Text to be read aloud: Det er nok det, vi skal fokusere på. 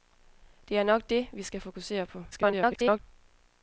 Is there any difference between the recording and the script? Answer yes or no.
yes